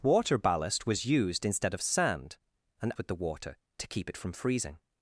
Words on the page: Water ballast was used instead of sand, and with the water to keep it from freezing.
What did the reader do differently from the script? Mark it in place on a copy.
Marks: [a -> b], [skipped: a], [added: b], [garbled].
Water ballast was used instead of sand, and with the water to keep it from freezing.